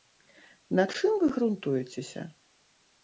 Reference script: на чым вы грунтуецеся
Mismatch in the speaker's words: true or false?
false